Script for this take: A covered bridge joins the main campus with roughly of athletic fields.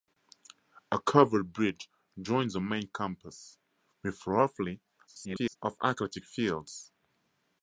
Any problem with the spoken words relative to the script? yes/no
yes